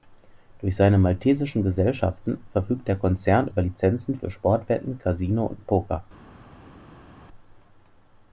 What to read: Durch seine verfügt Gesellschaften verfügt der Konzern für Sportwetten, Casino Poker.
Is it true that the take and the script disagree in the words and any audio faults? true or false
true